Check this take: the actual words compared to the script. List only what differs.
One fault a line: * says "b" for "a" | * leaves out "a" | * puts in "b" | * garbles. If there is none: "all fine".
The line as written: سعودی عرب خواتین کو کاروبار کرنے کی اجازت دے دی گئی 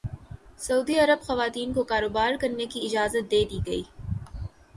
all fine